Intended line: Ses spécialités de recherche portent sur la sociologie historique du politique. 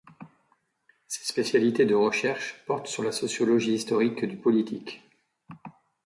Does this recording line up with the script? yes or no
yes